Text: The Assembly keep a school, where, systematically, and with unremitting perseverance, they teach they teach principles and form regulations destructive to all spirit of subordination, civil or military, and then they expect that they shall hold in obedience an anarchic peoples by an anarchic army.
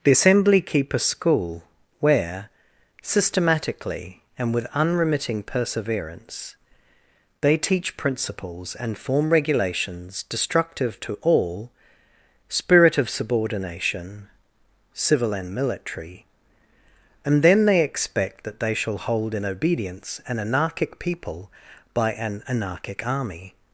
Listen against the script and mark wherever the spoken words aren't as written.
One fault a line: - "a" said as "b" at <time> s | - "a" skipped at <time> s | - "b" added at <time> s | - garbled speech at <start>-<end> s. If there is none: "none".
- "they teach" skipped at 8.0 s
- "or" said as "and" at 15.3 s
- "peoples" said as "people" at 21.0 s